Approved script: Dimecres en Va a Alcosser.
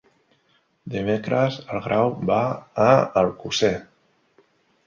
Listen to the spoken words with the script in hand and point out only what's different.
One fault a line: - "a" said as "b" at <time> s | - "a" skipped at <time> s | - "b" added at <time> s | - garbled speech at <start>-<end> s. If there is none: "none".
- "Grau" added at 1.9 s